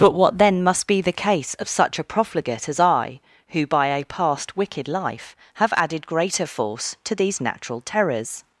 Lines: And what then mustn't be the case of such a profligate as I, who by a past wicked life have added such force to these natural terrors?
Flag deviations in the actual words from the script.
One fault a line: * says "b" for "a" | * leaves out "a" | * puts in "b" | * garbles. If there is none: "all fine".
* says "But" for "And"
* says "must" for "mustn't"
* says "greater" for "such"